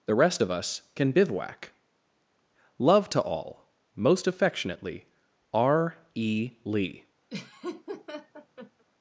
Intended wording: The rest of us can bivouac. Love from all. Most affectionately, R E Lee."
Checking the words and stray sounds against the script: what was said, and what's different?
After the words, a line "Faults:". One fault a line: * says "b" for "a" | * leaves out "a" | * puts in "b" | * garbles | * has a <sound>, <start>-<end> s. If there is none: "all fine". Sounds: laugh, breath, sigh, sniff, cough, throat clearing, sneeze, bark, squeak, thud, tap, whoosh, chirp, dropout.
The rest of us can bivouac. Love to all. Most affectionately, R E Lee."
Faults:
* says "to" for "from"
* has a laugh, 7.3-8.8 s